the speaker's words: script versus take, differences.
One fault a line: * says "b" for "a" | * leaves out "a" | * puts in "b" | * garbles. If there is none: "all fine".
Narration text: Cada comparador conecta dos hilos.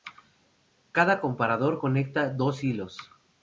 all fine